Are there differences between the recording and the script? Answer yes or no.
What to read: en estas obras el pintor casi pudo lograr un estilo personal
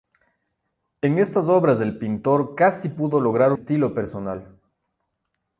yes